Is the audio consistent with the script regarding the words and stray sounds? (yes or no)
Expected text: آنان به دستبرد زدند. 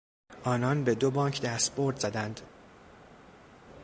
no